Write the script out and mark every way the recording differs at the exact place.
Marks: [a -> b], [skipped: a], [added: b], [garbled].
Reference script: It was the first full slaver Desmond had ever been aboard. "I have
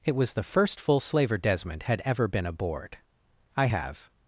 It was the first full slaver Desmond had ever been aboard. "I have